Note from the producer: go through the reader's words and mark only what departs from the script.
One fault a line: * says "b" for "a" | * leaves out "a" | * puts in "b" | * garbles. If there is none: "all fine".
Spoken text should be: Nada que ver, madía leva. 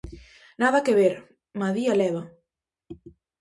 all fine